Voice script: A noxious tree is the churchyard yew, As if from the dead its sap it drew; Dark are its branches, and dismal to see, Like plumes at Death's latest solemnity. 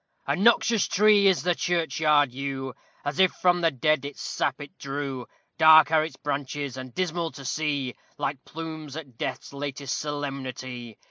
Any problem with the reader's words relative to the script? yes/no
no